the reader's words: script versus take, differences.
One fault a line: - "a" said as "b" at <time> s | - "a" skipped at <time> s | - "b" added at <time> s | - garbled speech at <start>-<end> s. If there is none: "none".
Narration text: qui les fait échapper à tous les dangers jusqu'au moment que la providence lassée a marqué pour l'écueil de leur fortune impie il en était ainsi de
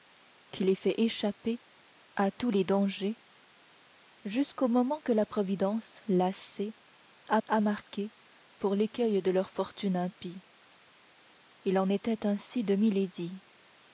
- "a" added at 7.5 s